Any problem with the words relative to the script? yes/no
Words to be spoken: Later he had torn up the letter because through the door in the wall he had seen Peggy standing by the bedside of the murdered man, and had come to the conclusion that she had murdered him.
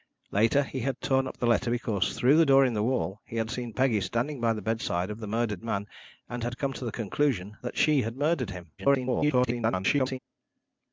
yes